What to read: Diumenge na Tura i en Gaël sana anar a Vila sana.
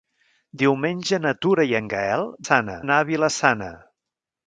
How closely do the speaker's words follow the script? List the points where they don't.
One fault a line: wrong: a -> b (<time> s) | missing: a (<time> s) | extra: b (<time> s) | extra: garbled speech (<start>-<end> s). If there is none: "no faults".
no faults